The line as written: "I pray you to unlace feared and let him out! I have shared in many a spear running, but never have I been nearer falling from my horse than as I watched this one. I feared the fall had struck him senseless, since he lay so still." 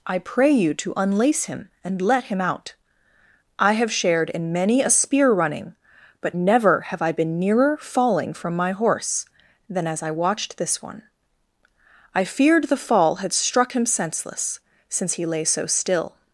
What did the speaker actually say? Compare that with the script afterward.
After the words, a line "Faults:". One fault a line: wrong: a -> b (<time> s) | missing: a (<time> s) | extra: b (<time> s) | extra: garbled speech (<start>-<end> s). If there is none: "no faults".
"I pray you to unlace him and let him out! I have shared in many a spear running, but never have I been nearer falling from my horse than as I watched this one. I feared the fall had struck him senseless, since he lay so still."
Faults:
wrong: feared -> him (1.4 s)